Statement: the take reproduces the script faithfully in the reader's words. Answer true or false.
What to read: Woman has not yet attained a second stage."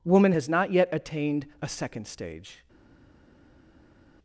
true